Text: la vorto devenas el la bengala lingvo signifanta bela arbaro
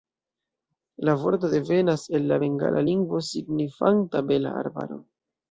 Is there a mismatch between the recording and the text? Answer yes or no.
no